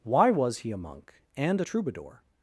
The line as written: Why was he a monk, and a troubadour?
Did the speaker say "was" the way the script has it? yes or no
yes